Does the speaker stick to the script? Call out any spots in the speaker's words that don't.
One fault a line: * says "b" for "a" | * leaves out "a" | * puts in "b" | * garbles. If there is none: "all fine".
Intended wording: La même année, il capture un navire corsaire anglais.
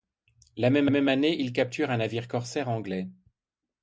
* puts in "même"